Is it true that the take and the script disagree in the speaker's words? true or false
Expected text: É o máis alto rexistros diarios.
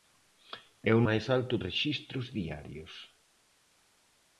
false